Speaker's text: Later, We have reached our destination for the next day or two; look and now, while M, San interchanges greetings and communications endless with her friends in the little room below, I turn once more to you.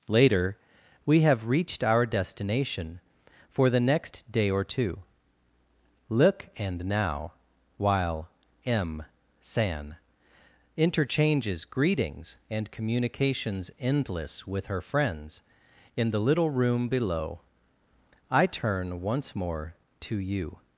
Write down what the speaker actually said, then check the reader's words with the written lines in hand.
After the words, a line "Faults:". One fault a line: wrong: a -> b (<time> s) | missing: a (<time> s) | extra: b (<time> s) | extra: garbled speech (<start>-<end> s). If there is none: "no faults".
Later, We have reached our destination for the next day or two; look and now, while M, San interchanges greetings and communications endless with her friends in the little room below, I turn once more to you.
Faults:
no faults